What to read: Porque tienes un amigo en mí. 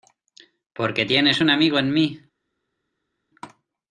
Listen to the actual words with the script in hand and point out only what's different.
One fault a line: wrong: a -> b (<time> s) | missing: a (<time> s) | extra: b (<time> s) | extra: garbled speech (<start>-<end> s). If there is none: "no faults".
no faults